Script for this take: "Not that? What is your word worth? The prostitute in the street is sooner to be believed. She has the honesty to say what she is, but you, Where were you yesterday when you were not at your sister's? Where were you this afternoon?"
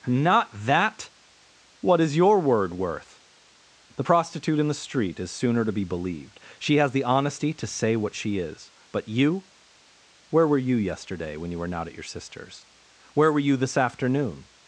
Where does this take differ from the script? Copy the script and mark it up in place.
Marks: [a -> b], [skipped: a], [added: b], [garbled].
"Not that? What is your word worth? The prostitute in the street is sooner to be believed. She has the honesty to say what she is, but you, Where were you yesterday when you were not at your sister's? Where were you this afternoon?"